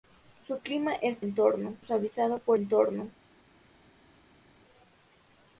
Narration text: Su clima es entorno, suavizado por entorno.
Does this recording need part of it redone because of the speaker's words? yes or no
no